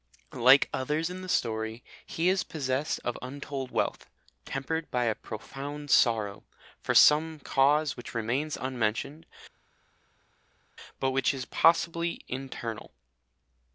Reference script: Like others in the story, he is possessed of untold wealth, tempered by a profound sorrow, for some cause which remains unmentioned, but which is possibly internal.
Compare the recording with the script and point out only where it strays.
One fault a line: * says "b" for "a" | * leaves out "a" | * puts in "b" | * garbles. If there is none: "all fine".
all fine